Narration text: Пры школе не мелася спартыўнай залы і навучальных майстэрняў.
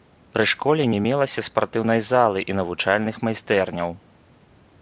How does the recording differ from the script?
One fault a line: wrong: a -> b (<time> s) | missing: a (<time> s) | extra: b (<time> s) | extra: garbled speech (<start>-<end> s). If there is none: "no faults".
no faults